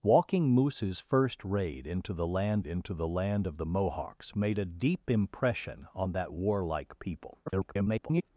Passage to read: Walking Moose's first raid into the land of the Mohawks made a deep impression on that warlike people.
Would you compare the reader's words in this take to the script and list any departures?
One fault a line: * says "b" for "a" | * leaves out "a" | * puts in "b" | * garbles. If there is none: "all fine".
* puts in "into the land"
* garbles